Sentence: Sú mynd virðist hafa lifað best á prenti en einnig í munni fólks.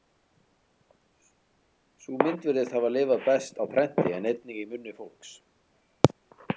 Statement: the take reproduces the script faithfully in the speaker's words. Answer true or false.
true